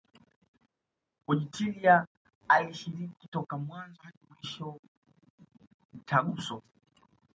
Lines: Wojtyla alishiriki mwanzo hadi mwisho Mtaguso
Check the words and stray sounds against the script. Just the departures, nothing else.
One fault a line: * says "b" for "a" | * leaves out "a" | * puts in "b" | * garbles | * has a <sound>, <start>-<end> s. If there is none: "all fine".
* puts in "toka"